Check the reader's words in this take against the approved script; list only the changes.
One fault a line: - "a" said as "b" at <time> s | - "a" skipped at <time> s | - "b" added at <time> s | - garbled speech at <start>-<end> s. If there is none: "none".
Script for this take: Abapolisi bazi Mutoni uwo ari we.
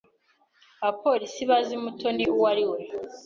none